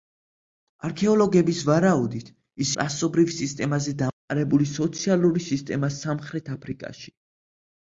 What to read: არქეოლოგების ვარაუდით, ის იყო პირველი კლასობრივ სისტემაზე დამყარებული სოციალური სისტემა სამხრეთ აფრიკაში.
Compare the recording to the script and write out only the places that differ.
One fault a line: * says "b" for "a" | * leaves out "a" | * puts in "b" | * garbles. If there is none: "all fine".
* leaves out "იყო პირველი"